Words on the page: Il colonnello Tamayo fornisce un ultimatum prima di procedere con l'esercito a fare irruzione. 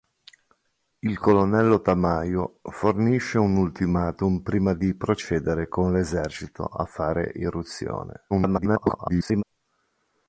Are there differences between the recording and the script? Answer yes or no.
yes